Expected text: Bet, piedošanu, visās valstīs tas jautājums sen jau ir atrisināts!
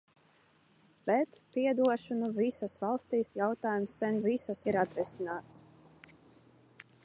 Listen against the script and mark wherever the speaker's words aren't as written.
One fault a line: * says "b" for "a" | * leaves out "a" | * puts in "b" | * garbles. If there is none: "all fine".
* leaves out "tas"
* says "visās" for "jau"